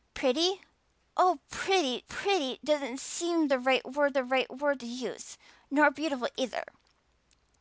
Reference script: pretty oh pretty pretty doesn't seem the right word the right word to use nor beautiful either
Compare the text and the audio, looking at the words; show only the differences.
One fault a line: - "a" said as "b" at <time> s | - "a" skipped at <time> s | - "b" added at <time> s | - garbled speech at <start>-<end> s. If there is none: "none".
none